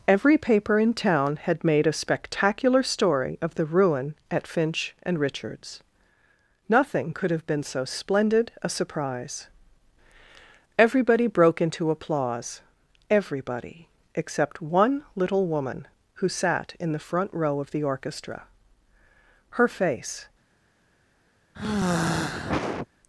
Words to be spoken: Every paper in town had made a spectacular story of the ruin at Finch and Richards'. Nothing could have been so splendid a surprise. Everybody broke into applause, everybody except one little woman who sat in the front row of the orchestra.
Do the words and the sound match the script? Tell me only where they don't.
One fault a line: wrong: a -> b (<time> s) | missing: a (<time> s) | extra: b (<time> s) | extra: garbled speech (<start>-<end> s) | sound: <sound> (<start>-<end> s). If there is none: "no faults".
extra: Her face (19.5 s)
sound: sigh (21.5-22.9 s)